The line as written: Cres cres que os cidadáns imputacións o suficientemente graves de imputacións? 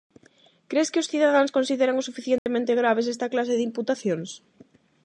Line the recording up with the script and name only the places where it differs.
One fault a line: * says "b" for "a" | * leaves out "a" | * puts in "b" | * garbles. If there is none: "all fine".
* leaves out "cres"
* says "consideran" for "imputacións"
* puts in "esta clase"